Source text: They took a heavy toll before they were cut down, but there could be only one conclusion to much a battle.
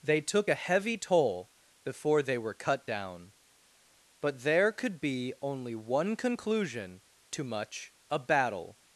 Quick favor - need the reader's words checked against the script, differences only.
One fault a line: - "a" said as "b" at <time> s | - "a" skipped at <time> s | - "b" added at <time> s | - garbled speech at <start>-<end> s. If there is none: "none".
none